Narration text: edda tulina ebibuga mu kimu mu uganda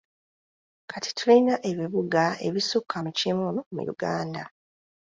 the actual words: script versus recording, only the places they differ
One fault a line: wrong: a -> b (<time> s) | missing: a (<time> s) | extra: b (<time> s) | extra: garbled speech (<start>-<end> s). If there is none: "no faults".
wrong: edda -> kati (0.9 s)
extra: ebisukka (2.5 s)